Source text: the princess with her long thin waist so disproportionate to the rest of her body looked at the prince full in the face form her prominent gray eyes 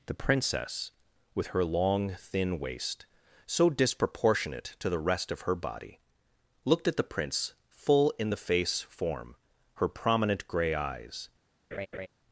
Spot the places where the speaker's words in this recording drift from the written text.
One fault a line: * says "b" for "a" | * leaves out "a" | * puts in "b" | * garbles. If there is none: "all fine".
all fine